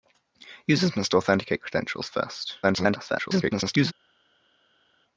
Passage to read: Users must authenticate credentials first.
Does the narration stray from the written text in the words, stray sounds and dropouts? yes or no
yes